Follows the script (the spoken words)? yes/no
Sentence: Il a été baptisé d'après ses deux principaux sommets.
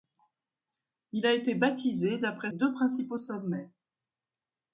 no